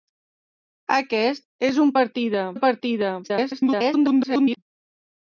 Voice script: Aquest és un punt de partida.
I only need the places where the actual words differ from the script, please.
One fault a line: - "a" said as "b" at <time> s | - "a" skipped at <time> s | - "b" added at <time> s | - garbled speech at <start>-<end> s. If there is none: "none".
- "punt" said as "partida" at 2.0 s
- garbled speech at 3.2-4.6 s